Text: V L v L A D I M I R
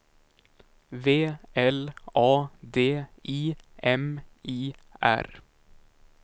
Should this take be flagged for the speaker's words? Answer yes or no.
yes